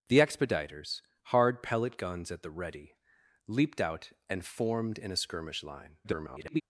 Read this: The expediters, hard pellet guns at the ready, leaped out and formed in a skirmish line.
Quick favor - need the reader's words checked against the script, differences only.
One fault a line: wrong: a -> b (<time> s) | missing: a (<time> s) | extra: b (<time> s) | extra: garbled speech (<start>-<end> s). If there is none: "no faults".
extra: garbled speech (6.0-6.6 s)